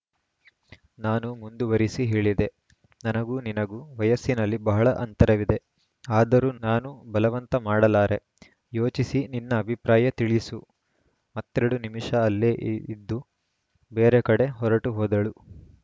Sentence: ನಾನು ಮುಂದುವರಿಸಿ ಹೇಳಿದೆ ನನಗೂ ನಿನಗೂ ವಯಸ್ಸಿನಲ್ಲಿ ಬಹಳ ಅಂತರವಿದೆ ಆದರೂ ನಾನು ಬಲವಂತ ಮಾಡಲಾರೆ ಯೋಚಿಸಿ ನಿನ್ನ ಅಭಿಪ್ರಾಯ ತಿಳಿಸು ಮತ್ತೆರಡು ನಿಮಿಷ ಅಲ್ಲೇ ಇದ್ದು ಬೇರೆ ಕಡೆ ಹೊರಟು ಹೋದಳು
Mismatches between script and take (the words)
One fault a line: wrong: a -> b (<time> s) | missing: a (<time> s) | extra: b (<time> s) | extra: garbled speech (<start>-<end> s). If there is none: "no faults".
no faults